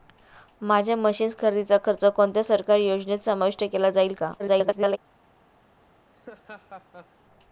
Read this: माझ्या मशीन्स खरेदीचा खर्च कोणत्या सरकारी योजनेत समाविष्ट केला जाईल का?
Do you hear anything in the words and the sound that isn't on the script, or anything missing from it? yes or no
yes